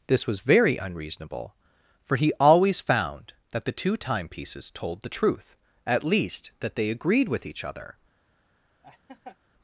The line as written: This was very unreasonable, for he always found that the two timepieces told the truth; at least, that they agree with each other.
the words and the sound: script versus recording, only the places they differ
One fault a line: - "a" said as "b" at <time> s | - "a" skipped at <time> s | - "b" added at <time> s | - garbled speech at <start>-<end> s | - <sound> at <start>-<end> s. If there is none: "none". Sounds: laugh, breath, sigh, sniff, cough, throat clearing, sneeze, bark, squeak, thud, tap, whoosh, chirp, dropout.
- "agree" said as "agreed" at 6.9 s
- laugh at 8.8-9.4 s